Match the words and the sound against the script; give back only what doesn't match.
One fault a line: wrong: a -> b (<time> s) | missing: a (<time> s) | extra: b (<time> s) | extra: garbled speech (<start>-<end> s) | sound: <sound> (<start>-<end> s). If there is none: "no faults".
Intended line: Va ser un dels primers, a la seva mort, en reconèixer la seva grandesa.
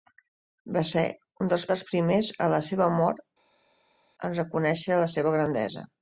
extra: dels (1.7 s)